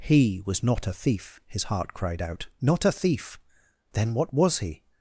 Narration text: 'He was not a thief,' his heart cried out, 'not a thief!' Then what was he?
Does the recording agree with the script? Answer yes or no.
yes